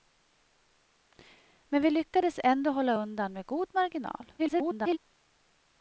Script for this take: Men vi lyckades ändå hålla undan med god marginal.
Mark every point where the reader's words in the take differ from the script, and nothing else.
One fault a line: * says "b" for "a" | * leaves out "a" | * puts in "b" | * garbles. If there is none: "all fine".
* garbles